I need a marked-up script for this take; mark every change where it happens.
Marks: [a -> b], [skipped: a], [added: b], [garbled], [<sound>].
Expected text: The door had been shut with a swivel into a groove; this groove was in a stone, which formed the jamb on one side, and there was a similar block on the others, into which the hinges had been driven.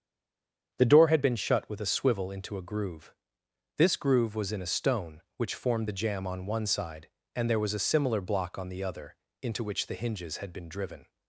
The door had been shut with a swivel into a groove; this groove was in a stone, which formed the jamb on one side, and there was a similar block on the [others, -> other] into which the hinges had been driven.